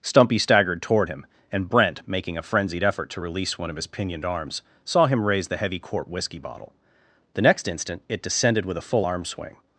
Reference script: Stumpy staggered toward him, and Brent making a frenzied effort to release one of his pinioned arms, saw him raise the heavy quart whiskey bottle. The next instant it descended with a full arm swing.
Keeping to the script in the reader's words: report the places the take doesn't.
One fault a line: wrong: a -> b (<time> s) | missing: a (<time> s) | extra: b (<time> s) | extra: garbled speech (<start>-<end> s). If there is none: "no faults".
no faults